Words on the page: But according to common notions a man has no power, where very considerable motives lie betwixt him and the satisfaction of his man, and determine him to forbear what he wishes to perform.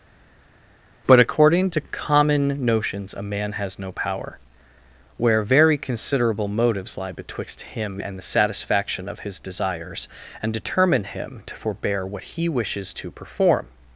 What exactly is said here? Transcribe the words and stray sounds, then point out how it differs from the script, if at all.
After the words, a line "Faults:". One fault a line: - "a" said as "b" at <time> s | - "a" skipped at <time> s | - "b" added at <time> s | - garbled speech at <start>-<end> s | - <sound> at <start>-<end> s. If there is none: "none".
But according to common notions a man has no power, where very considerable motives lie betwixt him and the satisfaction of his desires, and determine him to forbear what he wishes to perform.
Faults:
- "man" said as "desires" at 9.4 s